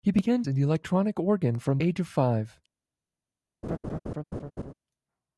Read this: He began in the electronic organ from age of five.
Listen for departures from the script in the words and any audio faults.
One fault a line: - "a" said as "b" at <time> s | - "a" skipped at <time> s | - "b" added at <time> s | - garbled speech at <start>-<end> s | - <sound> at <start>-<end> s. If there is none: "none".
- laugh at 3.6-4.7 s